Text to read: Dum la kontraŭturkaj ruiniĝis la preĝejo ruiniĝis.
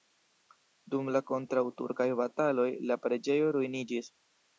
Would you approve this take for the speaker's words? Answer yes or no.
no